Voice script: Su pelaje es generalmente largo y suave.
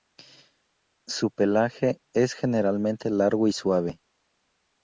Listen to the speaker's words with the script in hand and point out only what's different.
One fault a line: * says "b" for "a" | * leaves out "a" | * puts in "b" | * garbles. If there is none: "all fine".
all fine